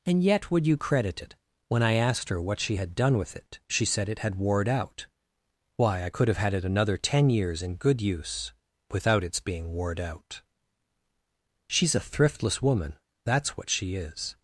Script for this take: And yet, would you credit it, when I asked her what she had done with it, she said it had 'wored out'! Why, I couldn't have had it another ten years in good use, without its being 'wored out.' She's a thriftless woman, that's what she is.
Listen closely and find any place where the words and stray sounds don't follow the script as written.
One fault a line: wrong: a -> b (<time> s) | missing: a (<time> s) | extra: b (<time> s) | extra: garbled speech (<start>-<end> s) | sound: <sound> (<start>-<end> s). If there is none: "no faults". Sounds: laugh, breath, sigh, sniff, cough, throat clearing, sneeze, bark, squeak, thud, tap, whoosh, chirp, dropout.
wrong: couldn't -> could (6.1 s)